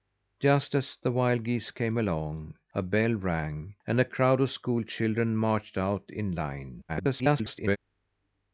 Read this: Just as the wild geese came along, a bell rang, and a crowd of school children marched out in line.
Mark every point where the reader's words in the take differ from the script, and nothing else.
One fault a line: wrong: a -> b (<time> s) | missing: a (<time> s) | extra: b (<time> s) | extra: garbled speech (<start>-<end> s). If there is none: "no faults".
extra: garbled speech (6.9-7.8 s)